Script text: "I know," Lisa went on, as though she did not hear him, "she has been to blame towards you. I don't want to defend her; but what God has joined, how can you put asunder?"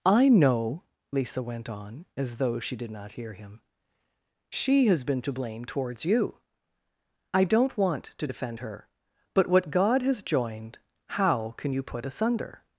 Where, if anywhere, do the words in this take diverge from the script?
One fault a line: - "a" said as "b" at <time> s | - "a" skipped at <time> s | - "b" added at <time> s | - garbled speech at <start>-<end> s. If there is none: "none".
none